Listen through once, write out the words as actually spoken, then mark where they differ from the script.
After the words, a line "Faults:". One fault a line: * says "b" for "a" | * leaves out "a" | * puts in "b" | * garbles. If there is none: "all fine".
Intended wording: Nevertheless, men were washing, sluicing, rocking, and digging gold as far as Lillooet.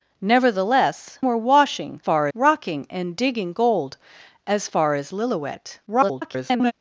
Nevertheless, were washing, far, rocking, and digging gold as far as Lillooet. [garbled]
Faults:
* leaves out "men"
* says "far" for "sluicing"
* garbles